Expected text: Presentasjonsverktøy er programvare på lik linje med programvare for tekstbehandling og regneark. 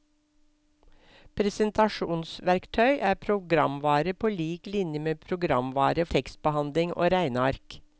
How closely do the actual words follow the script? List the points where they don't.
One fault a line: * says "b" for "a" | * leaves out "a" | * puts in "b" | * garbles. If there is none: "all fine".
* leaves out "for"